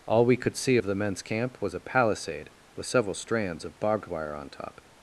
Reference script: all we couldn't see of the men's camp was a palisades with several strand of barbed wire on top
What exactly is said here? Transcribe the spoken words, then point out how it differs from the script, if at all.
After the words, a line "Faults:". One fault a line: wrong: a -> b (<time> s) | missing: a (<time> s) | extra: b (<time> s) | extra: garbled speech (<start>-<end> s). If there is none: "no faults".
all we could see of the men's camp was a palisade with several strands of barbed wire on top
Faults:
wrong: couldn't -> could (0.4 s)
wrong: palisades -> palisade (1.8 s)
wrong: strand -> strands (3.1 s)